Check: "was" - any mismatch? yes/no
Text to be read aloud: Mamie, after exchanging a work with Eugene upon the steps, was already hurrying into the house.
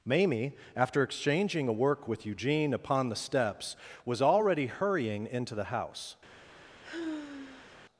no